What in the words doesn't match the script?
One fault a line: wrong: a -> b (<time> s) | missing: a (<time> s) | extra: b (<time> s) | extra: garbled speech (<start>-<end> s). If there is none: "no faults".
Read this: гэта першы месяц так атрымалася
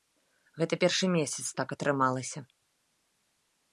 no faults